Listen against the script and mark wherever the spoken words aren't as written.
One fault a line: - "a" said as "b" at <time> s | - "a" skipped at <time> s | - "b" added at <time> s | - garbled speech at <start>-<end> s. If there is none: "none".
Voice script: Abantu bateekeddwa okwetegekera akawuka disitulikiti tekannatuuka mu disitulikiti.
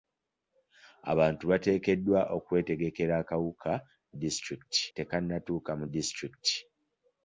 none